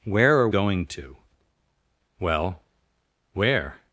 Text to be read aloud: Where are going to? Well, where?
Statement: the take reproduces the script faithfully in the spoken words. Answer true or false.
true